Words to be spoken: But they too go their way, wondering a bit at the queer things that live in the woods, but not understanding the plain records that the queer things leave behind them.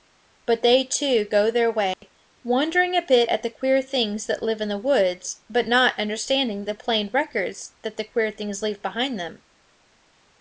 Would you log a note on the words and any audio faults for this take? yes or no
yes